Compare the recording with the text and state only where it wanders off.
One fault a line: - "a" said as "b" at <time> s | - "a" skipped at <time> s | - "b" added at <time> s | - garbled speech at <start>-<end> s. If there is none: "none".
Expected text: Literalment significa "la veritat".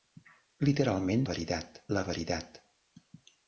- "significa" said as "veritat" at 1.3 s